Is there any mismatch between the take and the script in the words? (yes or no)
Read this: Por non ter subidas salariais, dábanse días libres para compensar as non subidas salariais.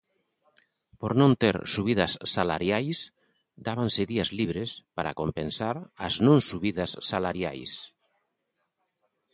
no